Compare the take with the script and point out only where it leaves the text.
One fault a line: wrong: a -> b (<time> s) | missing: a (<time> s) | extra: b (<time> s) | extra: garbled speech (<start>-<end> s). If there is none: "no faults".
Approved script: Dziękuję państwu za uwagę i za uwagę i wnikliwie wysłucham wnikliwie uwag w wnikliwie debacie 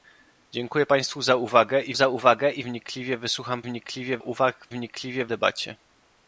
no faults